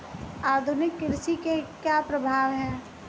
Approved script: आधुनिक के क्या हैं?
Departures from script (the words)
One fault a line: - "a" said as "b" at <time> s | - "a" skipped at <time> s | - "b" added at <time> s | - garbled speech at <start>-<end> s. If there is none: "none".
- "कृषि" added at 1.0 s
- "प्रभाव" added at 2.0 s